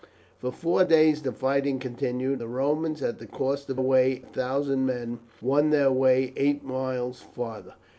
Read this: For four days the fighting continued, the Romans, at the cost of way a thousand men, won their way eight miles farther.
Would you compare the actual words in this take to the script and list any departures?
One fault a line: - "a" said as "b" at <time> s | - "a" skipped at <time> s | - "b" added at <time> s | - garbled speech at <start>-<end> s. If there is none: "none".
none